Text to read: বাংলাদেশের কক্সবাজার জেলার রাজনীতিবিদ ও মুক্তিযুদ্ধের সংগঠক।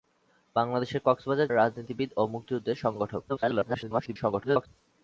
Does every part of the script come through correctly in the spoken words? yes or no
no